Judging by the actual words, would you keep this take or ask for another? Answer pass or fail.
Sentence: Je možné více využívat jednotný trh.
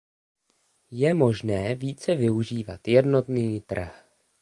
pass